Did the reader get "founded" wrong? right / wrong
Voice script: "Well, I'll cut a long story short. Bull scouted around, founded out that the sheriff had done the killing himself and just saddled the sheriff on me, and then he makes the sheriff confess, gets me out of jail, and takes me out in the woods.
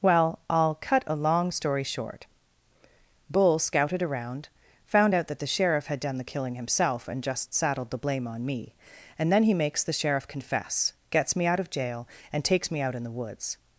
wrong